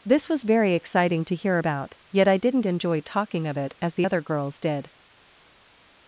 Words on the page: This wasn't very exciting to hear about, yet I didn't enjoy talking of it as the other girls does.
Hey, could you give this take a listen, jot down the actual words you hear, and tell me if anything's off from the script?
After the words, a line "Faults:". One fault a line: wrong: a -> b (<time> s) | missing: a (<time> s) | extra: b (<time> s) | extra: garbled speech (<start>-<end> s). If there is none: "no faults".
This was very exciting to hear about, yet I didn't enjoy talking of it as the other girls did.
Faults:
wrong: wasn't -> was (0.3 s)
wrong: does -> did (4.6 s)